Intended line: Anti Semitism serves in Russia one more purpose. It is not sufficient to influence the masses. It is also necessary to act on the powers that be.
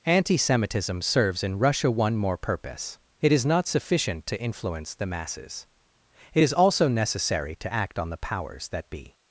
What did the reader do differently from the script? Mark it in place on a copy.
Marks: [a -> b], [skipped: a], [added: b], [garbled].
Anti Semitism serves in Russia one more purpose. It is not sufficient to influence the masses. It is also necessary to act on the powers that be.